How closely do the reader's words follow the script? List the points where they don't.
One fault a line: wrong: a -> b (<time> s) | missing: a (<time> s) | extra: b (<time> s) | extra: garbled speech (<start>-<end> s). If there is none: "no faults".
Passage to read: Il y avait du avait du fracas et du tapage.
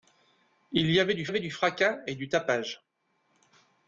no faults